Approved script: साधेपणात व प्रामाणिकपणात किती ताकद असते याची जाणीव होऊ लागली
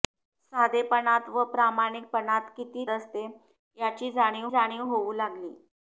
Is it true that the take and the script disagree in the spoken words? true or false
true